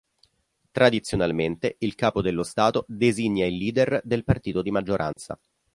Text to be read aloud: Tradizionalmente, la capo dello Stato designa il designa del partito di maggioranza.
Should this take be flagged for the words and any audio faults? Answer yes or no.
yes